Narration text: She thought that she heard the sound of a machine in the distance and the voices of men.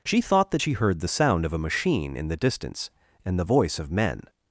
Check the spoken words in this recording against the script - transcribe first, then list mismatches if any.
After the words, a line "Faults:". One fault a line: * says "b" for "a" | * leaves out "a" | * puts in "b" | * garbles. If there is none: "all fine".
She thought that she heard the sound of a machine in the distance and the voice of men.
Faults:
* says "voice" for "voices"